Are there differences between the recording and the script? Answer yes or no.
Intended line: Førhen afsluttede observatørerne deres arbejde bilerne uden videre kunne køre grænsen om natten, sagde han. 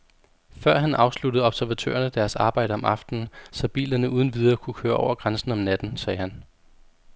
yes